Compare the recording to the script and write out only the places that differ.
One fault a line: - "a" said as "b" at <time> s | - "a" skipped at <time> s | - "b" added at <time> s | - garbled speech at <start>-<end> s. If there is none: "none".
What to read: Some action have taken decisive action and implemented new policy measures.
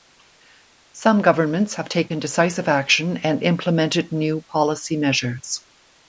- "action" said as "governments" at 1.2 s